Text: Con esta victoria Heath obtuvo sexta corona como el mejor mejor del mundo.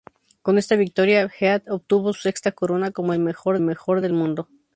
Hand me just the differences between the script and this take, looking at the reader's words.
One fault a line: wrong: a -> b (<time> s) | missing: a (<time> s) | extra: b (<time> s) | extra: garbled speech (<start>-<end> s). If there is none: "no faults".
no faults